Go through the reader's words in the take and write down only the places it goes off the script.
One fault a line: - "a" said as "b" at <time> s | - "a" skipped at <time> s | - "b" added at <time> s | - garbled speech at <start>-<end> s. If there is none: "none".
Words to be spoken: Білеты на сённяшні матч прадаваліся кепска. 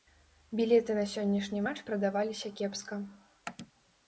none